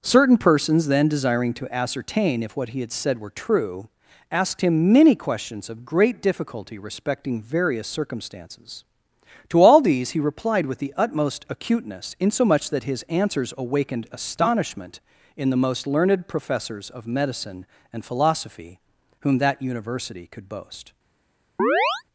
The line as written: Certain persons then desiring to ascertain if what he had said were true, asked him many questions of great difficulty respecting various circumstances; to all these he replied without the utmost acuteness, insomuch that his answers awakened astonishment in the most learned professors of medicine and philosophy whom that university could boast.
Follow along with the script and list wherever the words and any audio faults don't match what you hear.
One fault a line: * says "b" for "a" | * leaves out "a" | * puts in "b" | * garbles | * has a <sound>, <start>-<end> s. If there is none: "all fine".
* says "with" for "without"
* has a chirp, 21.6-22.0 s